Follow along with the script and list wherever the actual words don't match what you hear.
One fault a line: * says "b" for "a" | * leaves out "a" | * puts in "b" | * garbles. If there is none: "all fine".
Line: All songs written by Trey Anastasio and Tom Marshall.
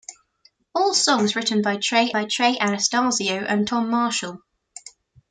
* puts in "by Trey"